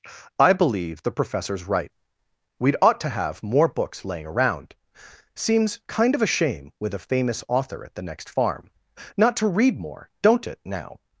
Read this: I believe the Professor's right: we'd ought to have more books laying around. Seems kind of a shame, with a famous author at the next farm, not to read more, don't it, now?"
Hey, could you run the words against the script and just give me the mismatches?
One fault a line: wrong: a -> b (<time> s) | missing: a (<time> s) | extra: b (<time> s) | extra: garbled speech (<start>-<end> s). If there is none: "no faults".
no faults